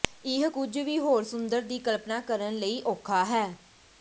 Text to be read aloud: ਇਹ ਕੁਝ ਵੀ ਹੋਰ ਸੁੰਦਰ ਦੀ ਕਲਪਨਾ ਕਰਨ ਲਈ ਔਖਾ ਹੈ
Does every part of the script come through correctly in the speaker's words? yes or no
yes